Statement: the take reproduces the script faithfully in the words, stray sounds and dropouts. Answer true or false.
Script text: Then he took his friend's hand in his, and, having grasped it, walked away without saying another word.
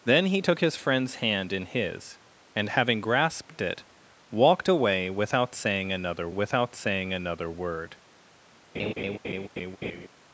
false